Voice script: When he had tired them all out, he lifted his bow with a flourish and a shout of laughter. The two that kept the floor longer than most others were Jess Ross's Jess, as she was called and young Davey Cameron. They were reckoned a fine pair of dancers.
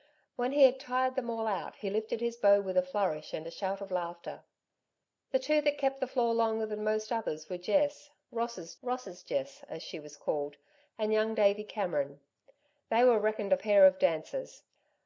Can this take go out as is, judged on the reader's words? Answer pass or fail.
fail